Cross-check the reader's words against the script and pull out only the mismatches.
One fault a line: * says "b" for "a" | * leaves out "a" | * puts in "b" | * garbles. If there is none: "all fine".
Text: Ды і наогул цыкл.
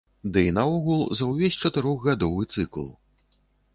* puts in "за ўвесь чатырохгадовы"